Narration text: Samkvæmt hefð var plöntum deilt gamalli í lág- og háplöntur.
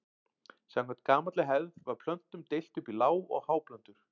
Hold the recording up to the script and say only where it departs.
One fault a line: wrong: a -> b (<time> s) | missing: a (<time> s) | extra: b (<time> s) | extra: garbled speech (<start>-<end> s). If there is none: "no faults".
extra: gamalli (1.1 s)
wrong: gamalli -> upp (2.8 s)